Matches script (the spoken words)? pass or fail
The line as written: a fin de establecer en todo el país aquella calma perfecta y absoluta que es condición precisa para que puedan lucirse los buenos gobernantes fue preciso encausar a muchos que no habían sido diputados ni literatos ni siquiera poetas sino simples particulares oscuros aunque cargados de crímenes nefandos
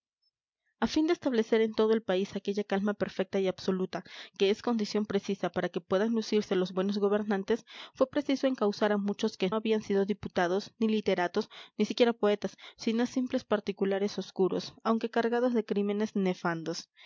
fail